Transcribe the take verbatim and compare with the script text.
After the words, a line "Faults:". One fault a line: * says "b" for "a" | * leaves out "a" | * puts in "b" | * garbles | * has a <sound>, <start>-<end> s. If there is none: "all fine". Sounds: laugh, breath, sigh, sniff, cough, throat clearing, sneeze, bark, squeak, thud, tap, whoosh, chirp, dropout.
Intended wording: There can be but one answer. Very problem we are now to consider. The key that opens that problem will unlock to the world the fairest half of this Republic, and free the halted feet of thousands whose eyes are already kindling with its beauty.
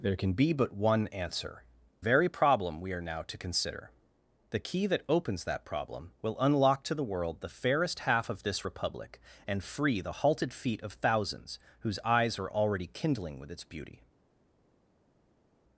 There can be but one answer. Very problem we are now to consider. The key that opens that problem will unlock to the world the fairest half of this Republic, and free the halted feet of thousands whose eyes are already kindling with its beauty.
Faults:
all fine